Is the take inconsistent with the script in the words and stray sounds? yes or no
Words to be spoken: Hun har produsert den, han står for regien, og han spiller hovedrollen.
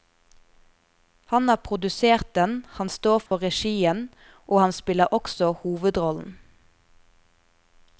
yes